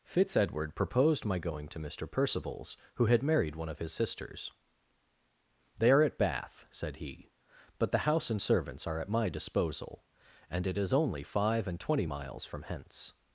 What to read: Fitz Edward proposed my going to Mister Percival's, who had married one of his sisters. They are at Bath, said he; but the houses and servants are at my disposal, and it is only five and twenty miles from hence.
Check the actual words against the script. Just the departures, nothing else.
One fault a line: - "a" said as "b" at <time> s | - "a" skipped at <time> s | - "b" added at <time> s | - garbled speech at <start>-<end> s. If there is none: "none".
- "houses" said as "house" at 8.0 s